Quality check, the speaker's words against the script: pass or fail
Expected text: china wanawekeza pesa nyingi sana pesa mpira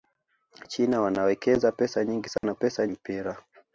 pass